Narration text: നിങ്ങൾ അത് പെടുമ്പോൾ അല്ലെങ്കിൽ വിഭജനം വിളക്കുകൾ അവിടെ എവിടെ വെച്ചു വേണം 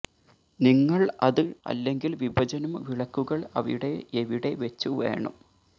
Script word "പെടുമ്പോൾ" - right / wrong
wrong